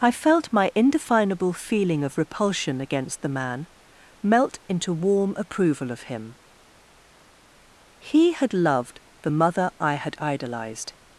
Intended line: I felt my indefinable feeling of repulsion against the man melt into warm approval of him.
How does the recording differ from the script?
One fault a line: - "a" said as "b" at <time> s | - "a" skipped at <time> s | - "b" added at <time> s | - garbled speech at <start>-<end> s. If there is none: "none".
- "He had loved the mother I had idolized" added at 8.0 s